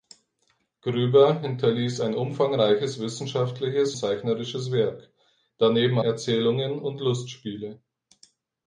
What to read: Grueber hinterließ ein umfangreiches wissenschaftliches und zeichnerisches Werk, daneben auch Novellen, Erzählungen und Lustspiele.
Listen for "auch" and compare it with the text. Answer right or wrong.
wrong